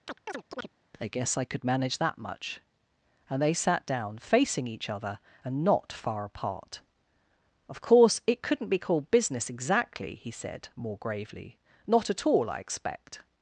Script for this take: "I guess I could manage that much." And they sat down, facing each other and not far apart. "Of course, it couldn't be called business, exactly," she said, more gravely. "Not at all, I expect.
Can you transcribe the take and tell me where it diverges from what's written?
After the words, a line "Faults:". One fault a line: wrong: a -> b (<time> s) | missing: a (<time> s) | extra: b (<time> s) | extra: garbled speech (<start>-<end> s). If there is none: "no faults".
"I guess I could manage that much." And they sat down, facing each other and not far apart. "Of course, it couldn't be called business, exactly," he said, more gravely. "Not at all, I expect.
Faults:
wrong: she -> he (10.2 s)